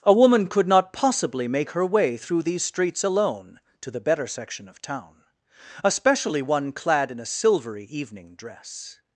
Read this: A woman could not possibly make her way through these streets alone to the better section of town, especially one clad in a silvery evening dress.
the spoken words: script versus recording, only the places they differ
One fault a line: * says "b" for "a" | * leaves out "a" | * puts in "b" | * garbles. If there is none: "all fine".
all fine